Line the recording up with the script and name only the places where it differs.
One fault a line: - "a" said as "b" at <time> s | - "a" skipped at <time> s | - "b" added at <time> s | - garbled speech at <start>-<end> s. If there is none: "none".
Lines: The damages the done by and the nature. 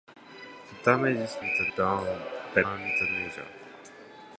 none